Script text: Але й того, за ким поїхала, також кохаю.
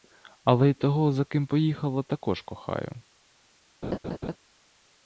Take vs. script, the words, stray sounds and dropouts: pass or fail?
fail